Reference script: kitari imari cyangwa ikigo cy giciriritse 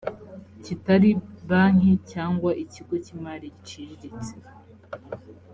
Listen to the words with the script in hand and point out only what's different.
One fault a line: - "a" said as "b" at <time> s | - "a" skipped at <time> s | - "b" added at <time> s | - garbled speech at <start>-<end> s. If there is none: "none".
- "imari" said as "banki" at 1.5 s
- "imari" added at 3.2 s